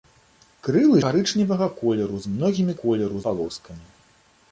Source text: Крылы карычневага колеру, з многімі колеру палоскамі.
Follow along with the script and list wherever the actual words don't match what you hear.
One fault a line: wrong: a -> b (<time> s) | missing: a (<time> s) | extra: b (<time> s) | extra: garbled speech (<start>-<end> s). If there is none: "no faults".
no faults